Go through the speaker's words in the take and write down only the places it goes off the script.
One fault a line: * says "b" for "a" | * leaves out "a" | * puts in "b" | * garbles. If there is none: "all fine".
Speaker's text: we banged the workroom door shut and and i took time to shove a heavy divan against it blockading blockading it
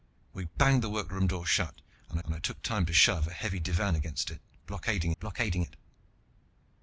all fine